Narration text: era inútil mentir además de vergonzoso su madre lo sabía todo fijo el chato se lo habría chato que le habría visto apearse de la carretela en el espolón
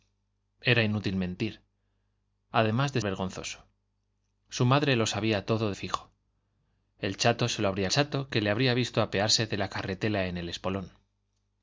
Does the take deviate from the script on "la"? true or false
false